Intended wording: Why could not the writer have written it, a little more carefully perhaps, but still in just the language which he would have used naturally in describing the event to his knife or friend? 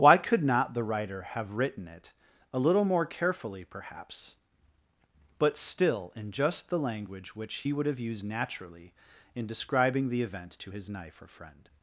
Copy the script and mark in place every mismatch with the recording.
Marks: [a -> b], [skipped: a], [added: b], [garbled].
Why could not the writer have written it, a little more carefully perhaps, but still in just the language which he would have used naturally in describing the event to his knife or friend?